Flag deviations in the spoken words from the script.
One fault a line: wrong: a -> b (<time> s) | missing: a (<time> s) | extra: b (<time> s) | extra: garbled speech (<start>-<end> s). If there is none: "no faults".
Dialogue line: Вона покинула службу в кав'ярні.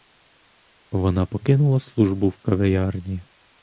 no faults